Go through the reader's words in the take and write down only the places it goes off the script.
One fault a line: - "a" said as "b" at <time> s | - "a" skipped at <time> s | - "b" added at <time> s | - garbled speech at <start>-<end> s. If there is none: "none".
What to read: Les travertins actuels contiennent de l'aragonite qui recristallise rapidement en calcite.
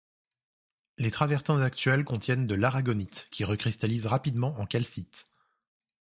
none